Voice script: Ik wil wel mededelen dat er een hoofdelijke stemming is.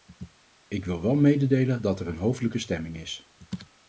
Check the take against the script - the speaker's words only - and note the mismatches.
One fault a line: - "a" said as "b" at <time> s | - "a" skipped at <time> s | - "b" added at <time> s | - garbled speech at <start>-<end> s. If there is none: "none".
none